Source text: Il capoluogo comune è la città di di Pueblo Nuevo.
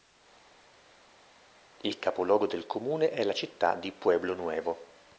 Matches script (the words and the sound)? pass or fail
fail